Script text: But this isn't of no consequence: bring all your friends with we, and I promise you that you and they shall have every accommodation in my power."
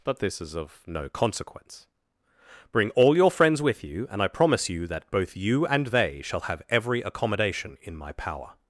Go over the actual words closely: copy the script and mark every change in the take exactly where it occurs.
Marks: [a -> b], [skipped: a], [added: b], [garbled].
But this [isn't -> is] of no consequence: bring all your friends with [we, -> you] and I promise you that [added: both] you and they shall have every accommodation in my power."